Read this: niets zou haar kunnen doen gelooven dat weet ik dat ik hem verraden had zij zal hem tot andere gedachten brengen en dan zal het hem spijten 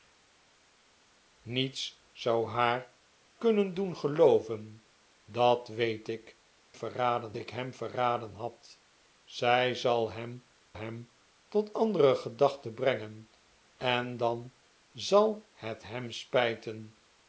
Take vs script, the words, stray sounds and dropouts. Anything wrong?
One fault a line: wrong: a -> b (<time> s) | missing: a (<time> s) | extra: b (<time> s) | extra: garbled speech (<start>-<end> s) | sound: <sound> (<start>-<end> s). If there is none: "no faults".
wrong: dat -> verraden (6.7 s)
extra: hem (10.7 s)